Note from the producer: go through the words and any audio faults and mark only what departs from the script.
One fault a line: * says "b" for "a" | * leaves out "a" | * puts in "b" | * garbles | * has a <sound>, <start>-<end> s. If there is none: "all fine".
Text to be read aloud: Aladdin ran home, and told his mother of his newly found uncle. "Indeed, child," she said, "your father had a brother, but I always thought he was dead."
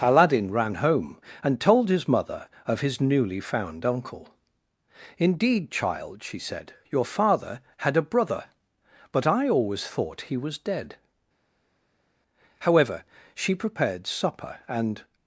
* puts in "However she prepared supper and"